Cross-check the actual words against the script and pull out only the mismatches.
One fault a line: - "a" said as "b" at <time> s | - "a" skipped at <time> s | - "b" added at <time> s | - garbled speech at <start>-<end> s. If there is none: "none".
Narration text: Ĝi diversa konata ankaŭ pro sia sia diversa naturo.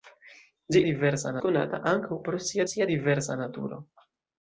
none